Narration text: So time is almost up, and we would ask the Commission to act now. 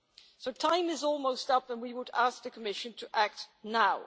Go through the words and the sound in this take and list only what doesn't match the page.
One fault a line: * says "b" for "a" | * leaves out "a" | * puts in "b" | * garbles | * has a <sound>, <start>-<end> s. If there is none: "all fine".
all fine